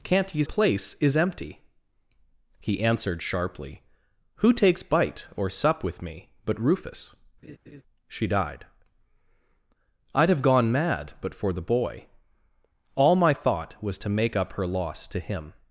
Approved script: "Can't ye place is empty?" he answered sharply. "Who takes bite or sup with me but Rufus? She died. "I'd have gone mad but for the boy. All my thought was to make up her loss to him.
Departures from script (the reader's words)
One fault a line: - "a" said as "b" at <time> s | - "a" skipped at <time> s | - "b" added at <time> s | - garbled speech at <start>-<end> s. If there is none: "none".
none